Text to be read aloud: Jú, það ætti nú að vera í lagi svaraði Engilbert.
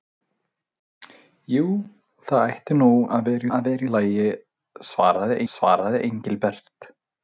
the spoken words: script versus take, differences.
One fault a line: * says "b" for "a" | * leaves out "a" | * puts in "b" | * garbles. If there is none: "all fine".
* puts in "að vera"
* puts in "svaraði"